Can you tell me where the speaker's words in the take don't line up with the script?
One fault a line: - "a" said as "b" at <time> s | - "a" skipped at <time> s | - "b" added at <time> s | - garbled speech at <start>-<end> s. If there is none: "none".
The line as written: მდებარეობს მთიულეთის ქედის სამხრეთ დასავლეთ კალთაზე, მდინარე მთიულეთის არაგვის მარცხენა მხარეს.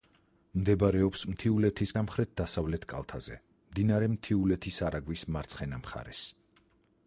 - "ქედის" skipped at 1.9 s